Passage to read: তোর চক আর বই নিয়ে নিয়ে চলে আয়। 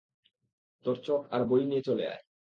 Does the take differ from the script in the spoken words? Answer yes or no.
yes